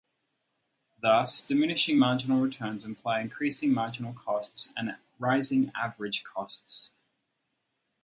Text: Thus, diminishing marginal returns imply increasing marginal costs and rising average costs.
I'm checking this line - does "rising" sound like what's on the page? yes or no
yes